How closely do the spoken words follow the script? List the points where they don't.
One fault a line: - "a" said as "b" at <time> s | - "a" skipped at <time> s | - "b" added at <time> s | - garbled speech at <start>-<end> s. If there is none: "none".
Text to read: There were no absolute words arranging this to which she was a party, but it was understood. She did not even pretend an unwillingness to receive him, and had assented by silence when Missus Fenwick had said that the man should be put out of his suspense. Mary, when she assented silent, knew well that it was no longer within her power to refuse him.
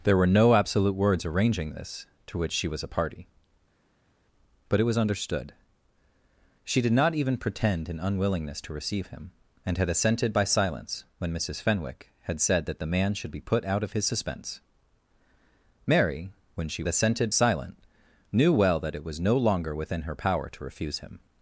none